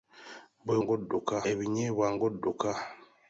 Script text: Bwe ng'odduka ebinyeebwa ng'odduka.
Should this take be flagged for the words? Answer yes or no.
no